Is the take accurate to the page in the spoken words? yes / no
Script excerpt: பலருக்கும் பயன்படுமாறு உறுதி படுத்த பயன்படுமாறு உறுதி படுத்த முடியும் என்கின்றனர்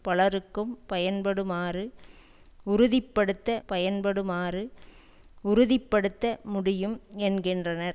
yes